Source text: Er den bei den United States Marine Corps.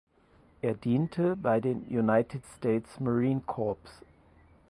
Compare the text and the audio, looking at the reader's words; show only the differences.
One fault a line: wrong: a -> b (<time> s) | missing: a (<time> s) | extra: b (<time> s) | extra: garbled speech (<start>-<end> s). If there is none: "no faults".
wrong: den -> diente (0.7 s)